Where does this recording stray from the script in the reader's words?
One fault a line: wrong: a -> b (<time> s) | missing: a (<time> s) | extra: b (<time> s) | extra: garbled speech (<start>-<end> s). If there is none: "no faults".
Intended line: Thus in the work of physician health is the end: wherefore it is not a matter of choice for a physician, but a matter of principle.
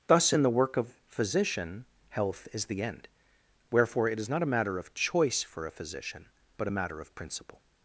no faults